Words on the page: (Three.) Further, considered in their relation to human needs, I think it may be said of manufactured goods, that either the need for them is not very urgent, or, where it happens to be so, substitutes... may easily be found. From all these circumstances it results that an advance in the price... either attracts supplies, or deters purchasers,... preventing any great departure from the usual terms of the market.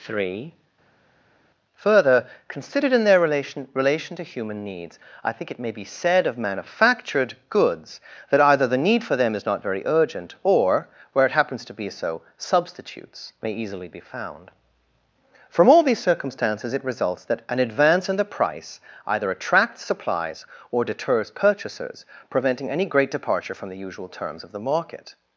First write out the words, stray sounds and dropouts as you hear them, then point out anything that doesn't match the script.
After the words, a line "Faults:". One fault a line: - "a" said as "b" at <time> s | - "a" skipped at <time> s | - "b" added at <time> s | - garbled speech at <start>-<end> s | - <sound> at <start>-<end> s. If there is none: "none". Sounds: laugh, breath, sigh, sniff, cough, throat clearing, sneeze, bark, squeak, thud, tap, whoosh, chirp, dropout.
(Three.) Further, considered in their relation relation to human needs, I think it may be said of manufactured goods, that either the need for them is not very urgent, or, where it happens to be so, substitutes... may easily be found. From all these circumstances it results that an advance in the price... either attracts supplies, or deters purchasers,... preventing any great departure from the usual terms of the market.
Faults:
- "relation" added at 3.7 s